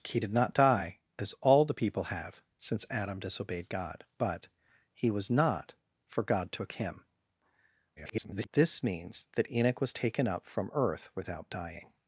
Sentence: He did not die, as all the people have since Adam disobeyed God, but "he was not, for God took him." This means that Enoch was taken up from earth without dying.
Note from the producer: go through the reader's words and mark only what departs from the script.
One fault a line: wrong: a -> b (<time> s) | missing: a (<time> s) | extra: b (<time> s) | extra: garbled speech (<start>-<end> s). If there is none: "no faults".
extra: garbled speech (8.0-8.5 s)